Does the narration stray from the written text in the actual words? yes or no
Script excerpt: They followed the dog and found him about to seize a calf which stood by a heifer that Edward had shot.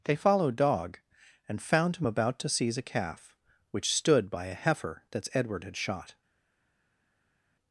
yes